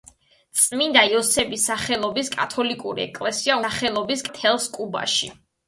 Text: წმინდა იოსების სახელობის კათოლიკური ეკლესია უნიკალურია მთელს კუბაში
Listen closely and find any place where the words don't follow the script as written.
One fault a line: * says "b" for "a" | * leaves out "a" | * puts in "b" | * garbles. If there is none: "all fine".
* says "სახელობის" for "უნიკალურია"